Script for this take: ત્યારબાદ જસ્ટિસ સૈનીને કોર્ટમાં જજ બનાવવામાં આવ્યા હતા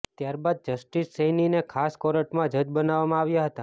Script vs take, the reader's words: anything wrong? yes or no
yes